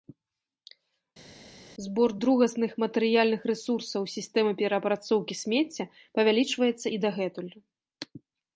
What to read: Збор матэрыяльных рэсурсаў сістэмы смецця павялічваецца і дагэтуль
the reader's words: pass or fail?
fail